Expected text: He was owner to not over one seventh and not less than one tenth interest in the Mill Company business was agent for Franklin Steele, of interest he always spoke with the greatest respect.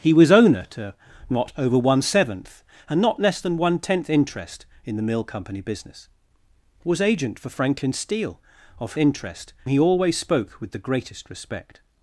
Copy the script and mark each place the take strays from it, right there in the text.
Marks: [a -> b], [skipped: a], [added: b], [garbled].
He was owner to not over one seventh and not less than one tenth interest in the Mill Company business was agent for Franklin Steele, of interest he always spoke with the greatest respect.